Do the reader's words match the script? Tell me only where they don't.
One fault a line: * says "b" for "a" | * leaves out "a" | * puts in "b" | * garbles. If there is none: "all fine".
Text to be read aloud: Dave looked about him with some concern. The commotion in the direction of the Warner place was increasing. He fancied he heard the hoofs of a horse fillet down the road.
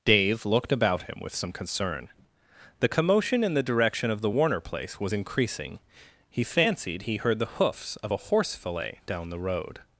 all fine